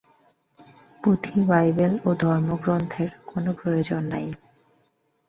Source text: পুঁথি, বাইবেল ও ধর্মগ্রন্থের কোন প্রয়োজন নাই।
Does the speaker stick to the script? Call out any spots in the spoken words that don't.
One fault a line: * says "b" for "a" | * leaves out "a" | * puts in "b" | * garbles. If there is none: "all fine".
all fine